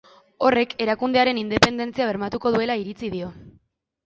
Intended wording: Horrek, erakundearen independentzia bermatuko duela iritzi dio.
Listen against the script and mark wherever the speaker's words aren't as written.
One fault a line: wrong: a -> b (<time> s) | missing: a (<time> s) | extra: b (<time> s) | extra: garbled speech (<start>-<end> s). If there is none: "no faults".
no faults